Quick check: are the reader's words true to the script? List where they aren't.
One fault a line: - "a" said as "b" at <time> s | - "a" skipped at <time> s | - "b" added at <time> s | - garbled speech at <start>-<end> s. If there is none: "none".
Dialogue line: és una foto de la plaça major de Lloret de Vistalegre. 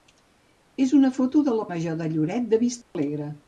- "plaça" skipped at 1.7 s